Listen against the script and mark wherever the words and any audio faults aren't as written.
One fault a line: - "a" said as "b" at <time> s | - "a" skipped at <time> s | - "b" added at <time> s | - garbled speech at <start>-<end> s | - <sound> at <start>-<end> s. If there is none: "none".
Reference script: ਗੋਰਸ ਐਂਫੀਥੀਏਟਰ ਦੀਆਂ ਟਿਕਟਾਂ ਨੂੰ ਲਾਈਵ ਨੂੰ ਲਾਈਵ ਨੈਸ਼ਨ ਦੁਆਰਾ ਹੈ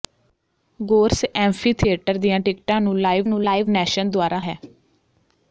none